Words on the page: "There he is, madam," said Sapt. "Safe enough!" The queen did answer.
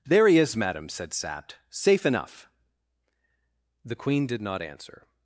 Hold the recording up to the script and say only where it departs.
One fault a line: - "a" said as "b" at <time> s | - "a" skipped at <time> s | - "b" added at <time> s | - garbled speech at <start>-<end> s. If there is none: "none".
- "not" added at 4.4 s